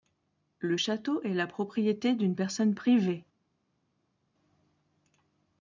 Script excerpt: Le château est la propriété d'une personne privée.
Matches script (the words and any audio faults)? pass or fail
pass